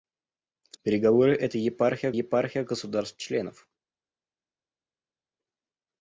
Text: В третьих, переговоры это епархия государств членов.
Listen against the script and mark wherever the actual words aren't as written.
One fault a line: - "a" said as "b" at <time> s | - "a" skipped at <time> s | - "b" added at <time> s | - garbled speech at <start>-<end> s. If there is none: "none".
- "третьих" skipped at 0.8 s
- "епархия" added at 2.1 s